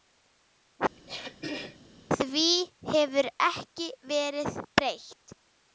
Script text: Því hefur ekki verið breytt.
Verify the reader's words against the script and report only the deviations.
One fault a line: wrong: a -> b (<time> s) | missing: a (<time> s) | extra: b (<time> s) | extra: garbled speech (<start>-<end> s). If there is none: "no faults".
no faults